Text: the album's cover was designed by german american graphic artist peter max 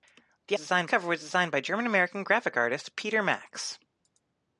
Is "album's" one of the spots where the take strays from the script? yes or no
yes